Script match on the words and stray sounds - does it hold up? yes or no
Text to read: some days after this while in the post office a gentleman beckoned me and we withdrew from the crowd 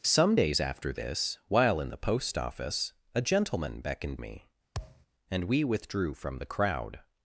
no